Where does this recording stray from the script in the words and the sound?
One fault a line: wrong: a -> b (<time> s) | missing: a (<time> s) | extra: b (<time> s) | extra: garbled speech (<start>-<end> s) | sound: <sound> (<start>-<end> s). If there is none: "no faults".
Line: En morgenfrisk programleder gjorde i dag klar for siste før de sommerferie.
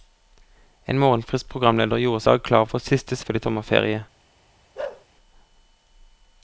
sound: bark (4.8-5.1 s)